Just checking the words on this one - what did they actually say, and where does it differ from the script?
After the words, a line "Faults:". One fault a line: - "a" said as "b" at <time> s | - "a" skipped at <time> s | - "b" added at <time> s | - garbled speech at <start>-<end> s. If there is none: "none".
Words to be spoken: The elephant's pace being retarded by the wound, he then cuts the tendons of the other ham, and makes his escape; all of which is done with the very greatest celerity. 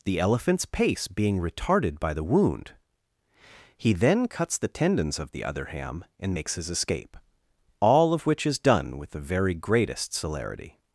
The elephant's pace being retarded by the wound, he then cuts the tendons of the other ham, and makes his escape; all of which is done with the very greatest celerity.
Faults:
none